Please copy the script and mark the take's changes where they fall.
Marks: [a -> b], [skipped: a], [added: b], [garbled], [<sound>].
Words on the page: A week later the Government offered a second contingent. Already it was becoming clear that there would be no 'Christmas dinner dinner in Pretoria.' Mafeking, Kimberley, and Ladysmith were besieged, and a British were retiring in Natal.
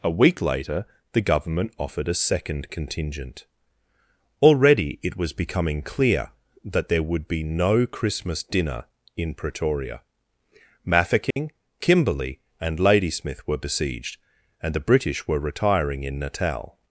A week later the Government offered a second contingent. Already it was becoming clear that there would be no 'Christmas dinner [skipped: dinner] in Pretoria.' Mafeking, [dropout] Kimberley, and Ladysmith were besieged, and [a -> the] British were retiring in Natal.